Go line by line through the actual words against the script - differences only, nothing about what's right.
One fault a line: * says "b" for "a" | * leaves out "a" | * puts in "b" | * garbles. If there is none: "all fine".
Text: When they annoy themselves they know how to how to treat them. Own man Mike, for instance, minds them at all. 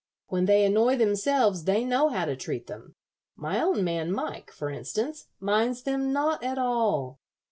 * leaves out "how to"
* puts in "My"
* puts in "not"